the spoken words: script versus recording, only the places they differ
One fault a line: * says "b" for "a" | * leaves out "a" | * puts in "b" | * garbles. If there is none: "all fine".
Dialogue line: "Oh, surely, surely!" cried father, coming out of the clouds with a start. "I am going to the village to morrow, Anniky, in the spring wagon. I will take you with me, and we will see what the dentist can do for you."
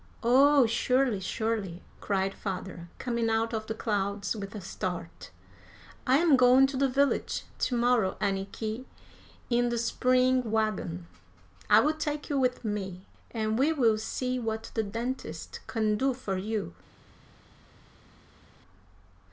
all fine